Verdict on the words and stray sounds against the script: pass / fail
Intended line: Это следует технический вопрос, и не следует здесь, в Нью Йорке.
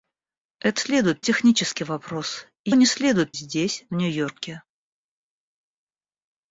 pass